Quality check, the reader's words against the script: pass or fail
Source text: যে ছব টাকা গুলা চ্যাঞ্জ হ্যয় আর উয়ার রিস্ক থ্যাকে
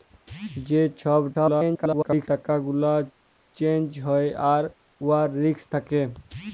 fail